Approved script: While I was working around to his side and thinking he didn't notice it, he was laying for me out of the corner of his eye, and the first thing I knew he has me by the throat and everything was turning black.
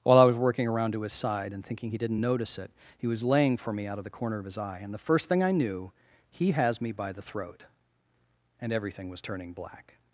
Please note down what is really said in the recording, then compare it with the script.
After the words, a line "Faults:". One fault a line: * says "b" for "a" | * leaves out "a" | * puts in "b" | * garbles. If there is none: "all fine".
While I was working around to his side and thinking he didn't notice it, he was laying for me out of the corner of his eye, and the first thing I knew he has me by the throat and everything was turning black.
Faults:
all fine